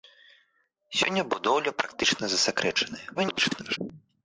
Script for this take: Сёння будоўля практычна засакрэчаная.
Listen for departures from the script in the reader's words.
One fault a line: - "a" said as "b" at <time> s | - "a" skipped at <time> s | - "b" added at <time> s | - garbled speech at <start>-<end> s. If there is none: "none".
- garbled speech at 3.1-3.8 s